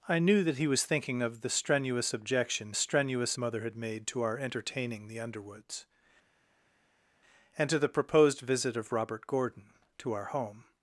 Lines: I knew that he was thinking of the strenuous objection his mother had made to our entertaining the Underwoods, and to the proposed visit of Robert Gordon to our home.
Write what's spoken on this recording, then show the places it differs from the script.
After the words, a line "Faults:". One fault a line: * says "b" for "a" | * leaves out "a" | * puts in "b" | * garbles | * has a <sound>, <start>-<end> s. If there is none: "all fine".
I knew that he was thinking of the strenuous objection strenuous mother had made to our entertaining the Underwoods, and to the proposed visit of Robert Gordon to our home.
Faults:
* says "strenuous" for "his"